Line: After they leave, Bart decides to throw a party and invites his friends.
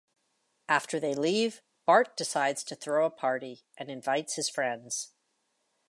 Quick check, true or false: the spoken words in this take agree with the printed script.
true